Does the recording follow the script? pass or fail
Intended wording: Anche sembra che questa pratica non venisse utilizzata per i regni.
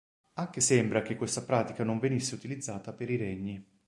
pass